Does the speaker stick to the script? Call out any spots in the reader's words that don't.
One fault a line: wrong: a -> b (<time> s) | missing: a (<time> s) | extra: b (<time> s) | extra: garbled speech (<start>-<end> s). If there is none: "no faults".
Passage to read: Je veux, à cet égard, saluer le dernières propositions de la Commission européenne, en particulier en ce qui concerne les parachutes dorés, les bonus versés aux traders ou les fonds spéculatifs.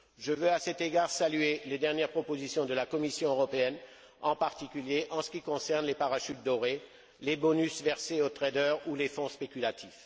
wrong: le -> les (1.6 s)